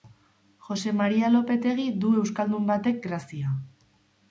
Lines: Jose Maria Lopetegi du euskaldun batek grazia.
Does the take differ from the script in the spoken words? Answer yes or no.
no